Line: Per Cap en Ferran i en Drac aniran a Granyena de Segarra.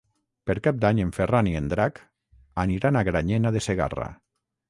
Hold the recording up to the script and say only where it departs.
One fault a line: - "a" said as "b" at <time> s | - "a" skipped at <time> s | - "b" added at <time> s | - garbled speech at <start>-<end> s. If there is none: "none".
- "d'Any" added at 0.8 s